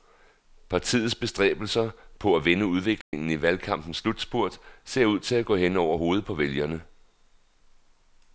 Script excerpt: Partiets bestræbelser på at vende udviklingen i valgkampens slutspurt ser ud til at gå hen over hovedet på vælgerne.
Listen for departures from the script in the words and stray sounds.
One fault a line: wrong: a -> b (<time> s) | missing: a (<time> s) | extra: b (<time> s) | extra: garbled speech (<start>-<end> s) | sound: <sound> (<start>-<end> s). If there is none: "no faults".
sound: dropout (3.0-3.1 s)